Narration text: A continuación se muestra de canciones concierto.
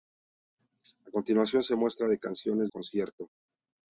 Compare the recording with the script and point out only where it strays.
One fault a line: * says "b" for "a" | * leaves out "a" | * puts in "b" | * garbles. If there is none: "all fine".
all fine